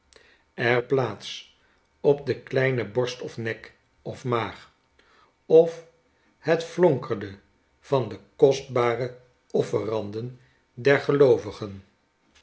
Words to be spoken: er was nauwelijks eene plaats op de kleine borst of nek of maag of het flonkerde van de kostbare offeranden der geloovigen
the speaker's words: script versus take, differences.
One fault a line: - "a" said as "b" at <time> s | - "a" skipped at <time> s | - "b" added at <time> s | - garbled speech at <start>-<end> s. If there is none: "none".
- "was nauwelijks eene" skipped at 0.8 s